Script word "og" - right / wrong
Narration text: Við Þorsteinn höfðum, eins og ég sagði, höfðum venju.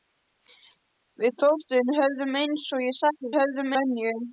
right